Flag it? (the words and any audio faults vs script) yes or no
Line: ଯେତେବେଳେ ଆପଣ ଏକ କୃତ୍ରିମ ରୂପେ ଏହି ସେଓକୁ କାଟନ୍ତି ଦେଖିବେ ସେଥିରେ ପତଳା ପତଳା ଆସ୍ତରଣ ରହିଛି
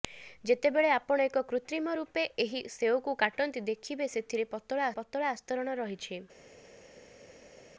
no